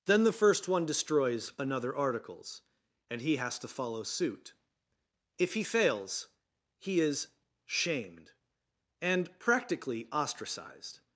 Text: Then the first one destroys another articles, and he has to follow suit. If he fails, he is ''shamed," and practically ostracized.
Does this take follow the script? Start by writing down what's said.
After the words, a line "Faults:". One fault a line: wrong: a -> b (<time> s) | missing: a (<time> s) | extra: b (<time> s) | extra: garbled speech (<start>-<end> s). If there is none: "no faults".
Then the first one destroys another articles, and he has to follow suit. If he fails, he is ''shamed," and practically ostracized.
Faults:
no faults